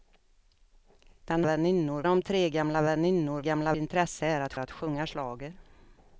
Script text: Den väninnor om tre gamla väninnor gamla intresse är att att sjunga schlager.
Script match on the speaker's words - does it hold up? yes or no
yes